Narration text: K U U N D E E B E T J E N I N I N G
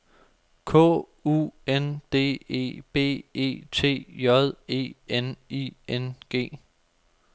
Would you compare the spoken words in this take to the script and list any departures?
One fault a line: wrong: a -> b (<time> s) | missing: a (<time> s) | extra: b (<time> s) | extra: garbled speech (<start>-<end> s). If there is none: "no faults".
missing: U (1.5 s)
missing: E (2.8 s)
missing: I N (6.1 s)